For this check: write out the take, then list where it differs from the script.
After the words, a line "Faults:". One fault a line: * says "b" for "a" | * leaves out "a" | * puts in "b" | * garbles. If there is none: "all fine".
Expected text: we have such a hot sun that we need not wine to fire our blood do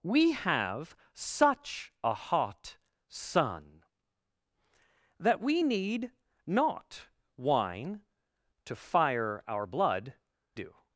we have such a hot sun that we need not wine to fire our blood do
Faults:
all fine